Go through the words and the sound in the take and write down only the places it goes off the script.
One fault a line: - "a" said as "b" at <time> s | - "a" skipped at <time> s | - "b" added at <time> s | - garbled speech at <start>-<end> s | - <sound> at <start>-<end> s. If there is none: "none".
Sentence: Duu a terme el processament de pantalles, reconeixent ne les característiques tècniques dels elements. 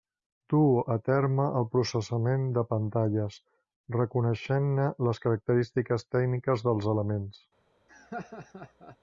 - laugh at 7.9-9.0 s